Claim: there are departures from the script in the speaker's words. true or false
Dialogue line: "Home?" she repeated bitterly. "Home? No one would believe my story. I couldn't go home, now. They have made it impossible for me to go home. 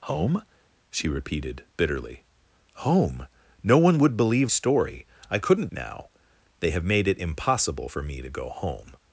true